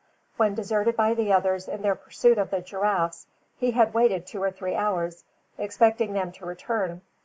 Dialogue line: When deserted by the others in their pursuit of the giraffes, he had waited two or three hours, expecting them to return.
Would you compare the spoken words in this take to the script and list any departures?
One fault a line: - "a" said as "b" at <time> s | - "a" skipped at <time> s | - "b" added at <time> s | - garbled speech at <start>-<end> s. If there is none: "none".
none